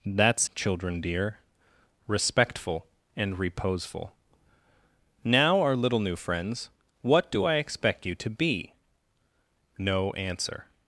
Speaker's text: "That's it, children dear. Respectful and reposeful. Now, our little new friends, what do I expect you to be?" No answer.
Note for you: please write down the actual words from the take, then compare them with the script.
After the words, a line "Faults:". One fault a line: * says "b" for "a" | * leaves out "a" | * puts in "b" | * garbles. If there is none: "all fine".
"That's children dear. Respectful and reposeful. Now, our little new friends, what do I expect you to be?" No answer.
Faults:
* leaves out "it"